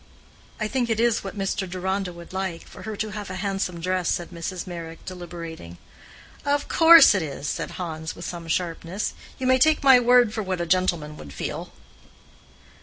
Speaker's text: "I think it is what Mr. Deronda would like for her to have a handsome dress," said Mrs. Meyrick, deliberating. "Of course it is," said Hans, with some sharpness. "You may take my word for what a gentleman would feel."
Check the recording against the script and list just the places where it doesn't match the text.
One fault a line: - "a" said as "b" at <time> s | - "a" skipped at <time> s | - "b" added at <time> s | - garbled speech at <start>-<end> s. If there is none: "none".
none